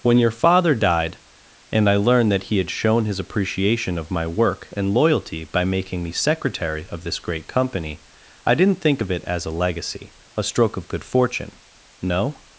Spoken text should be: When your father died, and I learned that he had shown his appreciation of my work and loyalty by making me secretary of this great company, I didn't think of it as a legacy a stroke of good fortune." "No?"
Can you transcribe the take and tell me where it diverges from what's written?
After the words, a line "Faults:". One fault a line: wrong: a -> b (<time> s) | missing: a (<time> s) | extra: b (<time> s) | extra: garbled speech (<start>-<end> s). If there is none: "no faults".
When your father died, and I learned that he had shown his appreciation of my work and loyalty by making me secretary of this great company, I didn't think of it as a legacy a stroke of good fortune." "No?"
Faults:
no faults